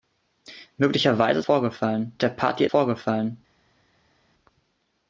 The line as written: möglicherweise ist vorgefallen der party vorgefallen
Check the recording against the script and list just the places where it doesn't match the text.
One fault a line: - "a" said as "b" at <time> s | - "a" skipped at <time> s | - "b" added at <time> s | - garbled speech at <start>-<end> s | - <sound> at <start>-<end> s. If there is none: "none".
none